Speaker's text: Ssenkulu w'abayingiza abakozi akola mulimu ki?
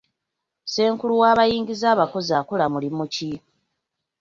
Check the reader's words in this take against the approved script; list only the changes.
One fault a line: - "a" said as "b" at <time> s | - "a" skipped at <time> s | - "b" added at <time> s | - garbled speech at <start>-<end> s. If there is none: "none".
none